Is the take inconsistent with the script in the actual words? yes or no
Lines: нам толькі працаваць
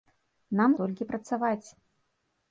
no